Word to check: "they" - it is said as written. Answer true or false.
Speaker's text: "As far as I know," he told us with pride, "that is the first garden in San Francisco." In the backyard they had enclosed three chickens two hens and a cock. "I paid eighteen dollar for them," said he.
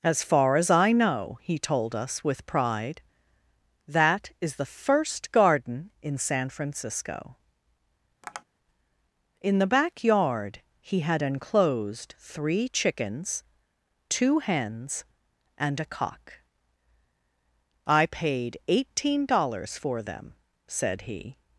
false